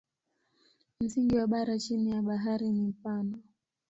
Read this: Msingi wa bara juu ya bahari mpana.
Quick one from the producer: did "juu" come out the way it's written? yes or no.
no